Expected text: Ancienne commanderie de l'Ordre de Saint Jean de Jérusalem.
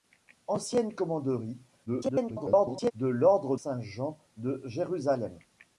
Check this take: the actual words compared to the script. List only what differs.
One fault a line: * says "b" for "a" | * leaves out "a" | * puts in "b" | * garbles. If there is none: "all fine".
* garbles
* leaves out "de"